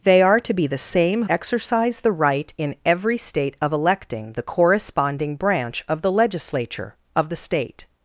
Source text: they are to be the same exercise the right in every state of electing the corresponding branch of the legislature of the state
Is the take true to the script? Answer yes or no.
yes